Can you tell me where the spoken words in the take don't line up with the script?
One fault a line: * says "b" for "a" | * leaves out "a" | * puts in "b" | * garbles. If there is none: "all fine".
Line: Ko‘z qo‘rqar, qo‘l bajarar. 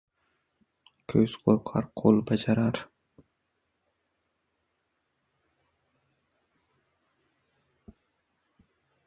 all fine